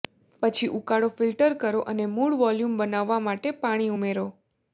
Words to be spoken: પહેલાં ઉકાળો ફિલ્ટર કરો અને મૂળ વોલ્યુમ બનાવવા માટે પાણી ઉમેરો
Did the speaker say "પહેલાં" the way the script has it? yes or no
no